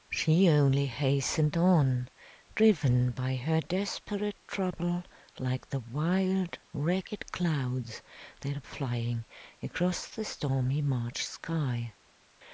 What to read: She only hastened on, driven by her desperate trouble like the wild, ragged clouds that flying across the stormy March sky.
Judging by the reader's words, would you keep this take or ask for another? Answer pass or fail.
pass